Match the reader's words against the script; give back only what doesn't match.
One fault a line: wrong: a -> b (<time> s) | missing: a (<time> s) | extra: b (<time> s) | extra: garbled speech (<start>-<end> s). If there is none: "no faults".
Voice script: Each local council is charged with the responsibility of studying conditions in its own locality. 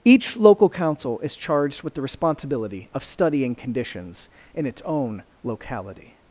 no faults